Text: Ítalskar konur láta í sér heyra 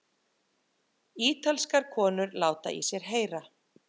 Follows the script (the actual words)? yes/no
yes